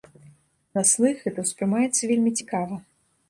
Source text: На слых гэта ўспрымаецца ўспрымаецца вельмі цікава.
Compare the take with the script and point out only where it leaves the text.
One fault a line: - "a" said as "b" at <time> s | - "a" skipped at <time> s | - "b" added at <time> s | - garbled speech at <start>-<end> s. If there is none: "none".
- "ўспрымаецца" skipped at 2.0 s